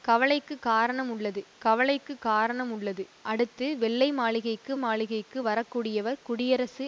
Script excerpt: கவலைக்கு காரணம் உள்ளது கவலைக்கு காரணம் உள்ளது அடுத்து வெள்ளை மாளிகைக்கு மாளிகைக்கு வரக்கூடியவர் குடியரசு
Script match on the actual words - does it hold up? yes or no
yes